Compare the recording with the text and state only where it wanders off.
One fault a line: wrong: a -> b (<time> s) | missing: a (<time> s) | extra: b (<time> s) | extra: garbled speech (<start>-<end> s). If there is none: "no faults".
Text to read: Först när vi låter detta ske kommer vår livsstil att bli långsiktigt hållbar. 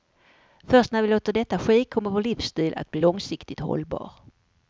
no faults